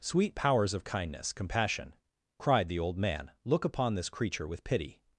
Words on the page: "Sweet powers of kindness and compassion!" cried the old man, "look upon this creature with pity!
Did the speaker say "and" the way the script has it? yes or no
no